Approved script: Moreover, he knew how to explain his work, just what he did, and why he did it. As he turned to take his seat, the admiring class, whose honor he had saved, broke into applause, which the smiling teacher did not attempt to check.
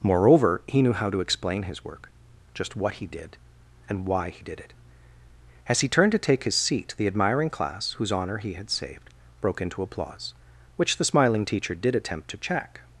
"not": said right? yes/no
no